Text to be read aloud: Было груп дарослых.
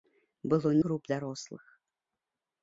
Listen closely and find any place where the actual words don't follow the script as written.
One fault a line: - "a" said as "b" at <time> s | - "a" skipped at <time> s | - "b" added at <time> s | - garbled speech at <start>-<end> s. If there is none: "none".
none